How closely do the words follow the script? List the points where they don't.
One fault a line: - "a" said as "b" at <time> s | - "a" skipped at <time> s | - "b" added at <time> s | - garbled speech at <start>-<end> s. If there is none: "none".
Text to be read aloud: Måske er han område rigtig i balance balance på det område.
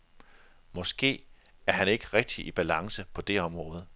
- "område" said as "ikke" at 1.9 s
- "balance" skipped at 3.0 s